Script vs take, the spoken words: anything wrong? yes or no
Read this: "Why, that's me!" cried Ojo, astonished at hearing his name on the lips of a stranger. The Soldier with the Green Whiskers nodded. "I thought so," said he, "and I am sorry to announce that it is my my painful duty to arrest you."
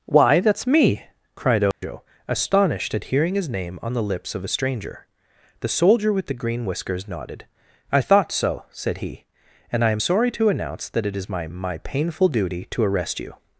no